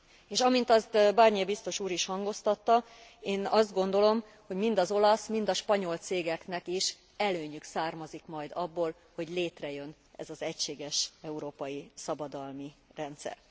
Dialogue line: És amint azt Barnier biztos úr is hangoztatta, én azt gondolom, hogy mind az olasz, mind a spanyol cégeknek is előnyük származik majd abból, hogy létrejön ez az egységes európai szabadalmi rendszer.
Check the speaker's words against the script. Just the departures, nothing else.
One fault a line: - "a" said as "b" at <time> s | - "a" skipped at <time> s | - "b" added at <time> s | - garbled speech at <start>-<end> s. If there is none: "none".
none